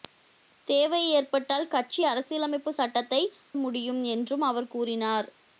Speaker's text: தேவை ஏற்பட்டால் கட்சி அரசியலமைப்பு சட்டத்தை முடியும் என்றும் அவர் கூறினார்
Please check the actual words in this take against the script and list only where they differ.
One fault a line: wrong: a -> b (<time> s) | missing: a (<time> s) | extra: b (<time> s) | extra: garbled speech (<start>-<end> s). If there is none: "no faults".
no faults